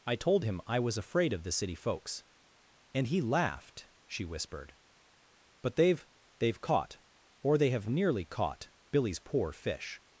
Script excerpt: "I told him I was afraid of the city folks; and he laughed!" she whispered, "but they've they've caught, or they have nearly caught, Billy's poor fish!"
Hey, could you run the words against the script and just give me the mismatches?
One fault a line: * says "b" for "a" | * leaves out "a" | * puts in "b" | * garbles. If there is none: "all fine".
all fine